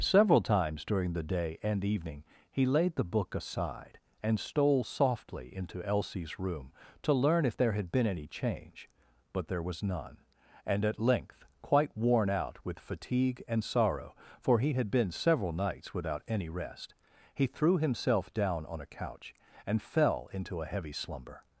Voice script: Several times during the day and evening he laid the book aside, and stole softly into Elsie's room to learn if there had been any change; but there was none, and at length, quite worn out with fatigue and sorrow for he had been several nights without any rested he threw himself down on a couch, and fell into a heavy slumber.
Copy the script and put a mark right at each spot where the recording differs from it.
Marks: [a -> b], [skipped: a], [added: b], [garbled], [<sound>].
Several times during the day and evening he laid the book aside, and stole softly into Elsie's room to learn if there had been any change; but there was none, and at length, quite worn out with fatigue and sorrow for he had been several nights without any [rested -> rest] he threw himself down on a couch, and fell into a heavy slumber.